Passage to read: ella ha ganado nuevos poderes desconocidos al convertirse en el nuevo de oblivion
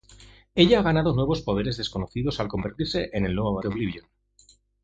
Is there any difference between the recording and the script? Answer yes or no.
no